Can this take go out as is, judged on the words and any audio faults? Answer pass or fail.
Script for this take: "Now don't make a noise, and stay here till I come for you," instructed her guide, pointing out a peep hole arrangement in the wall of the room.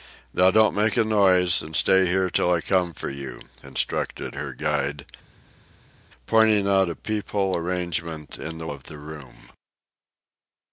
fail